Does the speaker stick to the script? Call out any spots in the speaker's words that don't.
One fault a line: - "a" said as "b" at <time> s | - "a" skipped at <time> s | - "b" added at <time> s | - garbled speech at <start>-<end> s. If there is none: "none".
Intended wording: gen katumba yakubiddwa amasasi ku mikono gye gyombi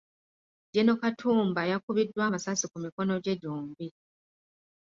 none